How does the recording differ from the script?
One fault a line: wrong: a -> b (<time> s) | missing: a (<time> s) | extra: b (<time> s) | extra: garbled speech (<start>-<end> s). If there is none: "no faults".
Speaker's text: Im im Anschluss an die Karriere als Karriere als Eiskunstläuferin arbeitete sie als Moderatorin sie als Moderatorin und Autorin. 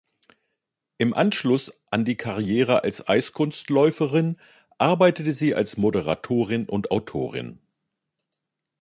missing: im (1.1 s)
missing: Karriere als (3.1 s)
missing: sie als Moderatorin (6.7 s)